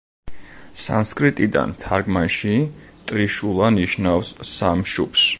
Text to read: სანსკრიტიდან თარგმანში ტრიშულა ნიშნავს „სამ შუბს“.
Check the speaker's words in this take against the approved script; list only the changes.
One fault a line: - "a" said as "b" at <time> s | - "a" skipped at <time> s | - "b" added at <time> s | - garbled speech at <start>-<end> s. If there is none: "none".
none